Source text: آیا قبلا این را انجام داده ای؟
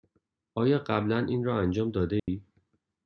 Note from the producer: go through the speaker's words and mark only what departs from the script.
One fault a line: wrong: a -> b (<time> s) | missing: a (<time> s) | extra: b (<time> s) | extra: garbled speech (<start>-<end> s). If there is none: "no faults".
no faults